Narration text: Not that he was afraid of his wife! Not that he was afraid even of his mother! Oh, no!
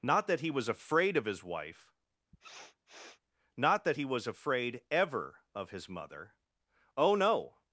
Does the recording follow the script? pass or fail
fail